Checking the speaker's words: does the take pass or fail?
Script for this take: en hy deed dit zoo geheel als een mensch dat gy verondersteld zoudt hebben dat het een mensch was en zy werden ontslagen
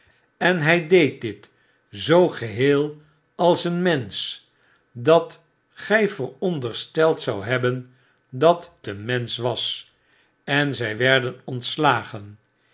fail